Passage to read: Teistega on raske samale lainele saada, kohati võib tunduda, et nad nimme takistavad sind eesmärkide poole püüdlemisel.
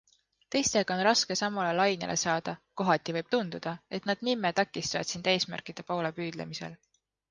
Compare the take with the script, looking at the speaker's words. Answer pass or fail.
pass